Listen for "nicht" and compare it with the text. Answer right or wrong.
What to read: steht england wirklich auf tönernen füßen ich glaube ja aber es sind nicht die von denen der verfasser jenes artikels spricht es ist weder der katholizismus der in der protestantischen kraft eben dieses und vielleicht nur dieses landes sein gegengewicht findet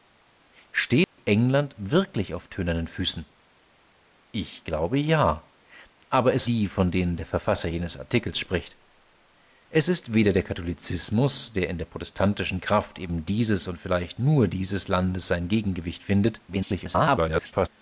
wrong